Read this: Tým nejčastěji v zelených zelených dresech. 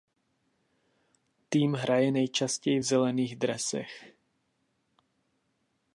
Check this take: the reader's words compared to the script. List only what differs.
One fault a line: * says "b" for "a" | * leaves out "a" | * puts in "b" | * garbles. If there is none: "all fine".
* puts in "hraje"
* leaves out "zelených"